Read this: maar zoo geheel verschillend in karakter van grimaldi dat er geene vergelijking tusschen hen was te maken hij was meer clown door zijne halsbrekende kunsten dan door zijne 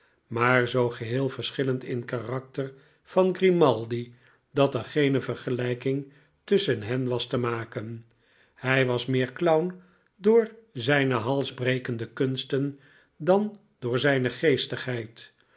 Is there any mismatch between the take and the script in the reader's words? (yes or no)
no